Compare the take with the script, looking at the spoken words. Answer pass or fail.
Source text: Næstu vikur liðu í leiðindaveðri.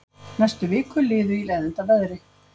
pass